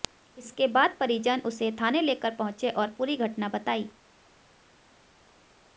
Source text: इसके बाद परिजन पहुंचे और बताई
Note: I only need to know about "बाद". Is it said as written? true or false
true